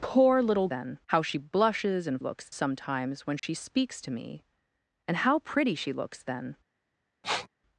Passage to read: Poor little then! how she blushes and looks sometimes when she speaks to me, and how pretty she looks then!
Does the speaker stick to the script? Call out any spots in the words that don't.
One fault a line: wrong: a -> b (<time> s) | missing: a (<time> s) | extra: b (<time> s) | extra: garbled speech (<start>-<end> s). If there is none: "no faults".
no faults